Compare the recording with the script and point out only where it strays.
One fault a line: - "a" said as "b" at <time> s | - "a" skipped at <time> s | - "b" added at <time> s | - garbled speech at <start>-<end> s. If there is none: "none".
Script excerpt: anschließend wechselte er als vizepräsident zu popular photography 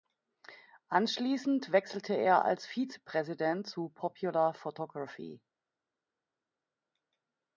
none